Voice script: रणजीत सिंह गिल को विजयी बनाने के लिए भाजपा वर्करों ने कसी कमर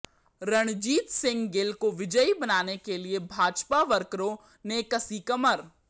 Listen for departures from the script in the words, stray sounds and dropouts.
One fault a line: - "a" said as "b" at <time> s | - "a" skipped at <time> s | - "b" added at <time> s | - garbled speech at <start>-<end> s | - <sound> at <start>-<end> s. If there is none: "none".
none